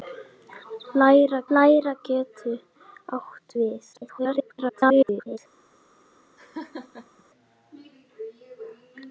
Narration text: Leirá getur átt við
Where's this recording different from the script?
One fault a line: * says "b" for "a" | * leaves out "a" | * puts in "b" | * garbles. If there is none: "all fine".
* puts in "leirá"
* garbles